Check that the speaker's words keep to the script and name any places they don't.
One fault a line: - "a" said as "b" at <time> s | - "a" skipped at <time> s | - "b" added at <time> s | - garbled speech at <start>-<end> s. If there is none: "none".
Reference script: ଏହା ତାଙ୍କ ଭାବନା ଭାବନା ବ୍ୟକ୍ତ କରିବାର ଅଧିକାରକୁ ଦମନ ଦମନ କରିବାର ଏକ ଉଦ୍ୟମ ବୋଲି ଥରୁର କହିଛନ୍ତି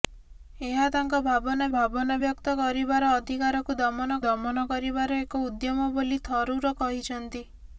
none